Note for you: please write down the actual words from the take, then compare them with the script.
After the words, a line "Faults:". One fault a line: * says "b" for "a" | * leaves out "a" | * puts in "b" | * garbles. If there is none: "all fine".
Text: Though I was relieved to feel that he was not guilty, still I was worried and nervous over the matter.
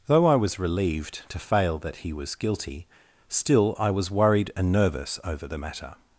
Though I was relieved to fail that he was guilty, still I was worried and nervous over the matter.
Faults:
* says "fail" for "feel"
* leaves out "not"